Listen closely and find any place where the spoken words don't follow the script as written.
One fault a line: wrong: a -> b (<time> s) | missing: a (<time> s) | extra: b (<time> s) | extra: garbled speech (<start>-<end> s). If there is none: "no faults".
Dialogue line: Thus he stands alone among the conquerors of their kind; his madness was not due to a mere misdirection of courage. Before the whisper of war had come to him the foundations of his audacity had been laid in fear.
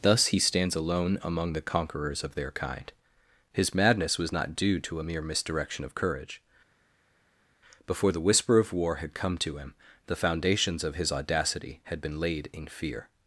no faults